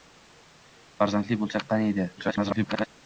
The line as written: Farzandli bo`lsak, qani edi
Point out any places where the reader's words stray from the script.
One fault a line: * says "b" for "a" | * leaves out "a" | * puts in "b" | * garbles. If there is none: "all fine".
* garbles